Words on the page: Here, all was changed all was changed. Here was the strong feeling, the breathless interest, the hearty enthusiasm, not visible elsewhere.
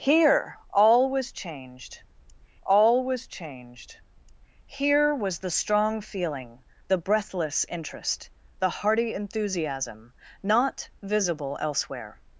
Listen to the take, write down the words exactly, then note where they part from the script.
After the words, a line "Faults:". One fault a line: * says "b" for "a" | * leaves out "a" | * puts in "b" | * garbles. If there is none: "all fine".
Here, all was changed all was changed. Here was the strong feeling, the breathless interest, the hearty enthusiasm, not visible elsewhere.
Faults:
all fine